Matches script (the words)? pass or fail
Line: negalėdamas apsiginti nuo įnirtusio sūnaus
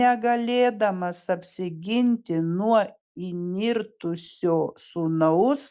pass